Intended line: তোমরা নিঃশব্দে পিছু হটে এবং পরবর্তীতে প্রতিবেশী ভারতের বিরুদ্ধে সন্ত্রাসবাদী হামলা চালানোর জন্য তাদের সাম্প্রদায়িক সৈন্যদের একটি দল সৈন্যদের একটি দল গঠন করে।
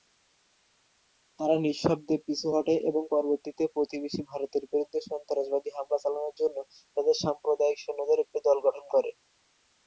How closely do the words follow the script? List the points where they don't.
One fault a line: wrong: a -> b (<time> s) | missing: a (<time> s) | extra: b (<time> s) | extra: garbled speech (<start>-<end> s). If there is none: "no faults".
wrong: তোমরা -> তারা (1.4 s)
missing: সৈন্যদের একটি দল (8.6 s)